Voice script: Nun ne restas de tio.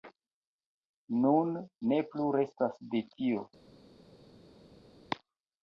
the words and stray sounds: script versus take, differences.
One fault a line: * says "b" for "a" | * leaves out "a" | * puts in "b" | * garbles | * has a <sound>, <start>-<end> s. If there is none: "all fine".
* puts in "plu"